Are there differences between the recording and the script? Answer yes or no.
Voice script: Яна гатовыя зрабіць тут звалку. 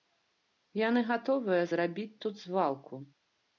yes